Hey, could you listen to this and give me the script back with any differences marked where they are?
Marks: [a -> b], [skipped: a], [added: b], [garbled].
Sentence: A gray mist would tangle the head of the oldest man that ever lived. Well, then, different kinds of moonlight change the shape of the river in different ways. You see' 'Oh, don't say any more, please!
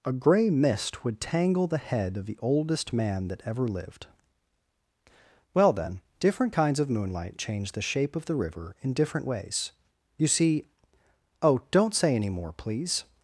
A gray mist would tangle the head of the oldest man that ever lived. Well, then, different kinds of moonlight change the shape of the river in different ways. You see' 'Oh, don't say any more, please!